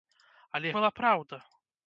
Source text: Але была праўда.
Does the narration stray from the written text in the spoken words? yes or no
no